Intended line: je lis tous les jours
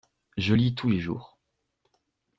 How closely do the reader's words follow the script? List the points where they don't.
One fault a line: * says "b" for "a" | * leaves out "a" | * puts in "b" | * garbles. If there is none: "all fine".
all fine